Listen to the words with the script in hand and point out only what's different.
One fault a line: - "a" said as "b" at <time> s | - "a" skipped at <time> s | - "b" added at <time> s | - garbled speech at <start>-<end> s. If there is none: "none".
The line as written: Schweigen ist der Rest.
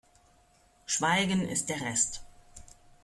none